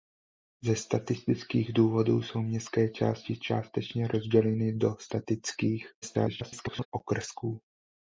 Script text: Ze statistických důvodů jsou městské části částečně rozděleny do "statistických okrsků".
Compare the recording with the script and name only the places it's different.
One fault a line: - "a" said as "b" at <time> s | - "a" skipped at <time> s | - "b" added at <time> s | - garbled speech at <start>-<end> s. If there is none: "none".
- garbled speech at 6.0-6.9 s